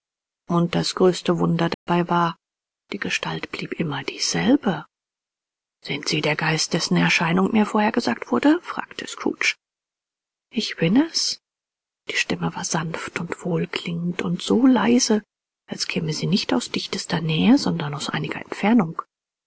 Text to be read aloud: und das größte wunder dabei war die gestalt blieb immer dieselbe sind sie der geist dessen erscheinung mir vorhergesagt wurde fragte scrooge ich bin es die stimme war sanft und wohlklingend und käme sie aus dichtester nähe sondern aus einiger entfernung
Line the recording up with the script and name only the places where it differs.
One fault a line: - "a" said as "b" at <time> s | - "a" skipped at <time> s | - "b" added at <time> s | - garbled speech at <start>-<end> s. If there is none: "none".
- "so leise als" added at 14.4 s
- "nicht" added at 16.3 s